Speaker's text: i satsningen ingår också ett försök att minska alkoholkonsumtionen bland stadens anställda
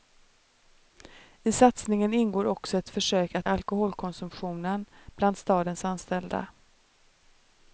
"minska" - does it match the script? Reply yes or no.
no